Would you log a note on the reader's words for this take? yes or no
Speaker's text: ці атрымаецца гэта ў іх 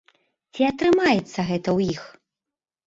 no